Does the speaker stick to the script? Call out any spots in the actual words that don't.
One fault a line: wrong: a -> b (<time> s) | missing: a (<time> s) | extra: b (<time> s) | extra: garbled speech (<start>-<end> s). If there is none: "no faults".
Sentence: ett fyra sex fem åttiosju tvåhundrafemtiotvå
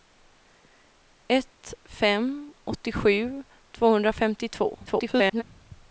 missing: fyra sex (1.7 s)
extra: garbled speech (4.9-5.4 s)